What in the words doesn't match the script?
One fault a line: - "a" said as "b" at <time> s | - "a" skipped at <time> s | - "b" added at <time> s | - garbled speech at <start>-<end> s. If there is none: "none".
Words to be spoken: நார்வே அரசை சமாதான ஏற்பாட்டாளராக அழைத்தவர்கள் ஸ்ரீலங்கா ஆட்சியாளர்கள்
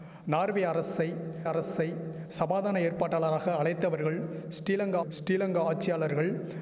- "அரசை" added at 1.4 s
- "ஸ்ரீலங்கா" added at 5.1 s